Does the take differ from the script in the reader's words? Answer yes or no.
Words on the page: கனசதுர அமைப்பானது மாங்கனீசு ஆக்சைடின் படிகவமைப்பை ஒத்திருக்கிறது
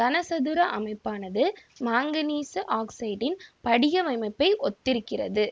no